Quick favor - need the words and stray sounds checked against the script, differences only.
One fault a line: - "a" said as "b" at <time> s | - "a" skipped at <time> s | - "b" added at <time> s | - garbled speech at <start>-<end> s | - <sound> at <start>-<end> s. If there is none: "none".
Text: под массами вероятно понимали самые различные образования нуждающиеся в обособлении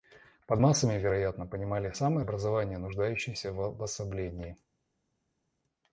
- "различные" skipped at 2.2 s